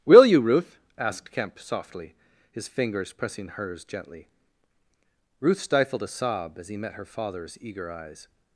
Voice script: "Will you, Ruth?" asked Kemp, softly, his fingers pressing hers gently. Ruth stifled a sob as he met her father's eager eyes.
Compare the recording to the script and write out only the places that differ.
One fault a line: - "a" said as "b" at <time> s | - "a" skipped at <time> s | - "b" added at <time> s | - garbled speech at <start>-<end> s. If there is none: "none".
none